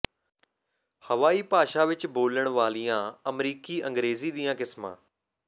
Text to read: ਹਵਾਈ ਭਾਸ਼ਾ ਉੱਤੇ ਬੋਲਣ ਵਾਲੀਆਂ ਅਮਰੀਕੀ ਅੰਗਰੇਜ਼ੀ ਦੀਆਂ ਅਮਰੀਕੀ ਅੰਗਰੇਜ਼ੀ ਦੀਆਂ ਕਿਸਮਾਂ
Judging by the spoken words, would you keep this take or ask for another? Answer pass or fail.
fail